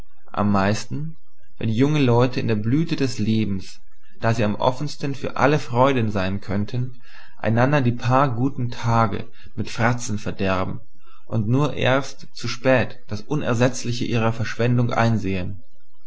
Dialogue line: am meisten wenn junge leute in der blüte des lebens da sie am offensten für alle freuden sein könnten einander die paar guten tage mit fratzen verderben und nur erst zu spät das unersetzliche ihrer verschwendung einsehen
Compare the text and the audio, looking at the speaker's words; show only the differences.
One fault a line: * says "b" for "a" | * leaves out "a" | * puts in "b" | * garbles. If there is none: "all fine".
all fine